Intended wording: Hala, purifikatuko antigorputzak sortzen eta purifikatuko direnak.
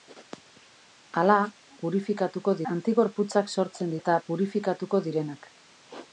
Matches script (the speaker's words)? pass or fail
pass